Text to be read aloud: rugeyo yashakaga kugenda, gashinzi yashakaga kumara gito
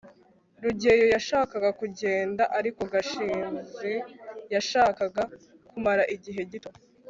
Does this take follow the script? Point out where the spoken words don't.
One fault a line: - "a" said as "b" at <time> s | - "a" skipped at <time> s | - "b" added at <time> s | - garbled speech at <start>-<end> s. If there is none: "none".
- "ariko" added at 2.6 s
- "igihe" added at 6.2 s